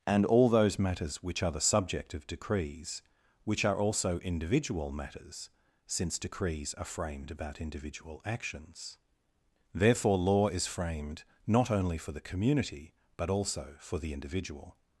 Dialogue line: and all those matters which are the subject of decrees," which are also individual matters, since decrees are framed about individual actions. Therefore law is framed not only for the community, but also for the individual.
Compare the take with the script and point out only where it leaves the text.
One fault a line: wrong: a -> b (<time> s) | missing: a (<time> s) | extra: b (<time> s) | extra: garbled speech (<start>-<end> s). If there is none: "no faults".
no faults